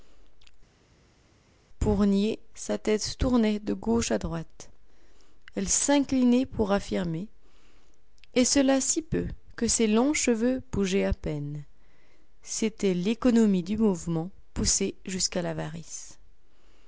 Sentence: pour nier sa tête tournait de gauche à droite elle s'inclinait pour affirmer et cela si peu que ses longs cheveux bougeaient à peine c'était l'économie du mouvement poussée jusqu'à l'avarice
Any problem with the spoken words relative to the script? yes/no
no